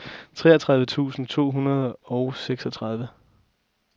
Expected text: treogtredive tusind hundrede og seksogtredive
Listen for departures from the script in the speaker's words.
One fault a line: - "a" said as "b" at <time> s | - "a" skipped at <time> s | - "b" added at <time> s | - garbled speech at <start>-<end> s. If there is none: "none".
- "to" added at 1.3 s